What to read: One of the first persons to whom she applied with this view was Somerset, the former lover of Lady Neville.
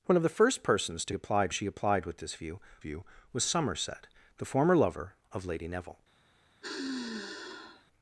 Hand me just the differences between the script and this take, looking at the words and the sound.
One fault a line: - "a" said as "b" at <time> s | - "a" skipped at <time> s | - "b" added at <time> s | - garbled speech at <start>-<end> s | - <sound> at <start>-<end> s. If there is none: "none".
- "whom" said as "applied" at 1.1 s
- "view" added at 2.8 s
- sigh at 6.6-7.8 s